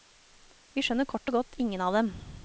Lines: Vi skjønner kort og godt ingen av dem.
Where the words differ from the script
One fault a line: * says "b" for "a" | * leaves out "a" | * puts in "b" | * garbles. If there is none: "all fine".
all fine